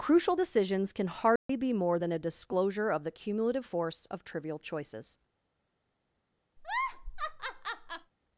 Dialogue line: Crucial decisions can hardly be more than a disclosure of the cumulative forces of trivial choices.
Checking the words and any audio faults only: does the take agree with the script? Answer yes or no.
no